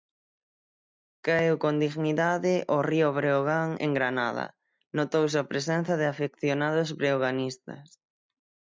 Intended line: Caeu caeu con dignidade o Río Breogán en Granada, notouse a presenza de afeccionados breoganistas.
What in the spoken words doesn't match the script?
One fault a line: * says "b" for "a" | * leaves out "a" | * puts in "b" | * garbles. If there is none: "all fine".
* leaves out "caeu"